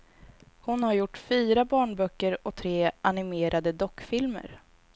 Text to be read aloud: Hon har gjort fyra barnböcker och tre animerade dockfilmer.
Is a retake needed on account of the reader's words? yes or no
no